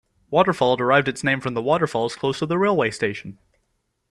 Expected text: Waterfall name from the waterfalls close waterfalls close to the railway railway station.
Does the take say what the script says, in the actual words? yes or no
no